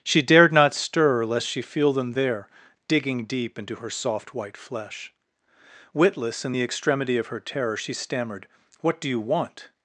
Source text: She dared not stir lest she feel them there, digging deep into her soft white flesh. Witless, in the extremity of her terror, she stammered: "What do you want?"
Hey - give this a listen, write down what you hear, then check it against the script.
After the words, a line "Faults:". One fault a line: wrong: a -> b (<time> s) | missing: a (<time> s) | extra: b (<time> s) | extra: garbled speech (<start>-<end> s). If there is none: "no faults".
She dared not stir lest she feel them there, digging deep into her soft white flesh. Witless, in the extremity of her terror, she stammered: "What do you want?"
Faults:
no faults